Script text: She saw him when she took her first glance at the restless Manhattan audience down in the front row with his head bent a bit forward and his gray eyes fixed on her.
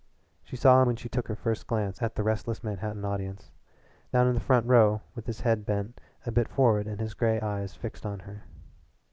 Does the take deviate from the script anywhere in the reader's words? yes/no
yes